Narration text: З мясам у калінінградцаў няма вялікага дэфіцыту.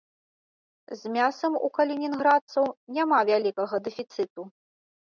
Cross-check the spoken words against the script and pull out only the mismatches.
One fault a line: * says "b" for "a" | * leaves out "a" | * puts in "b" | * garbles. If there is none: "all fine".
all fine